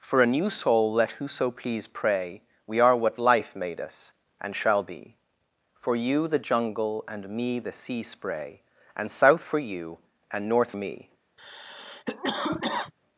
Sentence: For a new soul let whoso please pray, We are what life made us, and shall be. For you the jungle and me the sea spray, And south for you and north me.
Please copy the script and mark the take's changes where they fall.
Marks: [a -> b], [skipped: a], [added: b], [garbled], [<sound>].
For a new soul let whoso please pray, We are what life made us, and shall be. For you the jungle and me the sea spray, And south for you and north me. [cough]